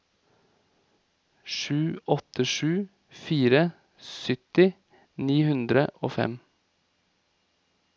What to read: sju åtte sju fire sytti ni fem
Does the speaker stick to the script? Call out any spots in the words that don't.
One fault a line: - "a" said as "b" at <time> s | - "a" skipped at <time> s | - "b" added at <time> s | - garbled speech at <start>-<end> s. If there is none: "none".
- "hundre og" added at 5.5 s